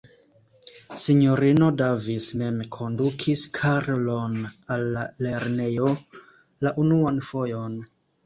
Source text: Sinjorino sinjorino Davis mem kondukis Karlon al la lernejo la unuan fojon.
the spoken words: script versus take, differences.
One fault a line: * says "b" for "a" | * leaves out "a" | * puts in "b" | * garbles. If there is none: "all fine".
* leaves out "sinjorino"